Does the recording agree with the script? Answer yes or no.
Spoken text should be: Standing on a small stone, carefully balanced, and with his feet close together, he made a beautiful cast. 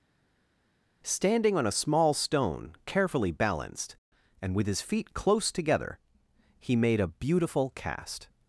yes